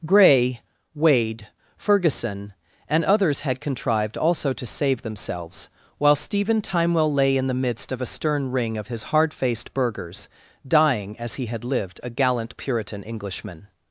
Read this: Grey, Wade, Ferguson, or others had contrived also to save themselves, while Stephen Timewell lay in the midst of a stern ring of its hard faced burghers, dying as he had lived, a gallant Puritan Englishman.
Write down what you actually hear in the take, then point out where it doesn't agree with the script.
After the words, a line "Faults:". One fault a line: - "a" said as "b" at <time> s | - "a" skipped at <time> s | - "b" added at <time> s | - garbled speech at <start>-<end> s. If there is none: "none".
Grey, Wade, Ferguson, and others had contrived also to save themselves, while Stephen Timewell lay in the midst of a stern ring of his hard faced burghers, dying as he had lived, a gallant Puritan Englishman.
Faults:
- "or" said as "and" at 2.9 s
- "its" said as "his" at 8.9 s